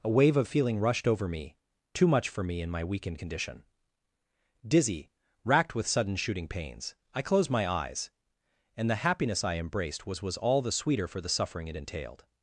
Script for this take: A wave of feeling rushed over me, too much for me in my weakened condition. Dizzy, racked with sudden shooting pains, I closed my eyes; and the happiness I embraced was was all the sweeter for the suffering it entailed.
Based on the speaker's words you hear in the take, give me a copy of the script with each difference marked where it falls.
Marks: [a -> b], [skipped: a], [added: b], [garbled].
A wave of feeling rushed over me, too much for me in my weakened condition. Dizzy, racked with sudden shooting pains, I closed my eyes; and the happiness I embraced was was all the sweeter for the suffering it entailed.